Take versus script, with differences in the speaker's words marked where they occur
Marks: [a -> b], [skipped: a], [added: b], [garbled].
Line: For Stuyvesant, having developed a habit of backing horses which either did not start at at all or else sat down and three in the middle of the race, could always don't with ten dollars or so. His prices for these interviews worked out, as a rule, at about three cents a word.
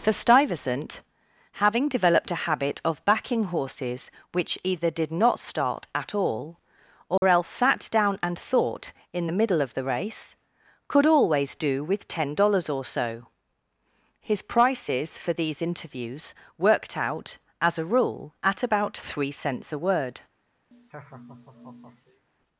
For Stuyvesant, having developed a habit of backing horses which either did not start at [skipped: at] all or else sat down and [three -> thought] in the middle of the race, could always [don't -> do] with ten dollars or so. His prices for these interviews worked out, as a rule, at about three cents a word.